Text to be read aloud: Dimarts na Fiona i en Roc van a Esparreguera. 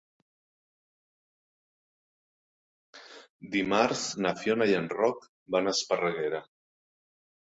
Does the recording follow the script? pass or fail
pass